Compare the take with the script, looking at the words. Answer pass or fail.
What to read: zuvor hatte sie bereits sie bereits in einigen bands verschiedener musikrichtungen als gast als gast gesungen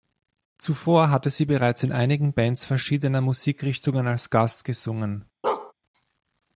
fail